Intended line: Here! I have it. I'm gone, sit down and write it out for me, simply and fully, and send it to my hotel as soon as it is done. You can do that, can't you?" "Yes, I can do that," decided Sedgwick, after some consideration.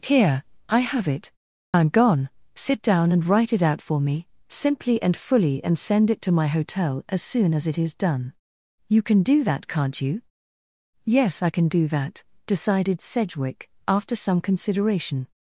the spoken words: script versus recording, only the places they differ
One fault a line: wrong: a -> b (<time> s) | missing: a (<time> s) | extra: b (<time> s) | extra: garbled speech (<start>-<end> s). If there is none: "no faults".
no faults